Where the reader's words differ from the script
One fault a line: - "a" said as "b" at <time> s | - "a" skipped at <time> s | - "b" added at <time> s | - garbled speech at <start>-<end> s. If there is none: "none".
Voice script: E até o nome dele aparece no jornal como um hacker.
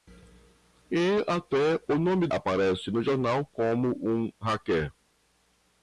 - "dele" skipped at 2.3 s